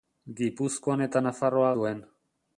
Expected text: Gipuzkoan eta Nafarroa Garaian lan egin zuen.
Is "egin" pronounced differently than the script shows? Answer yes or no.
yes